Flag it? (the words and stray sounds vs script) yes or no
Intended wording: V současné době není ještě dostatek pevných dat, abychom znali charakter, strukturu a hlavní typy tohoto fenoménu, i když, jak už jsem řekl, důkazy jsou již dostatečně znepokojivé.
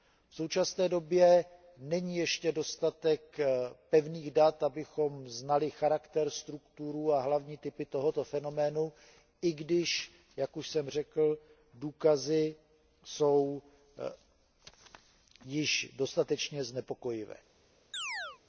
yes